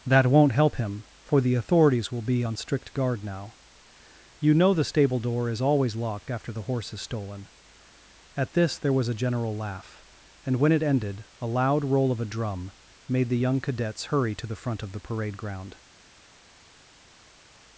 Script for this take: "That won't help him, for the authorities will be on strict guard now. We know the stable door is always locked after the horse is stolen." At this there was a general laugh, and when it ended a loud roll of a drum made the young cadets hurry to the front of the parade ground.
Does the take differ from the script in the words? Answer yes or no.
yes